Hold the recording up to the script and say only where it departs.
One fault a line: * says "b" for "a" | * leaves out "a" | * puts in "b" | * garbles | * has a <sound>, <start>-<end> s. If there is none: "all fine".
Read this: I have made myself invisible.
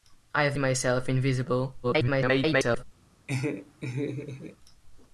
* leaves out "made"
* garbles
* has a laugh, 3.3-4.6 s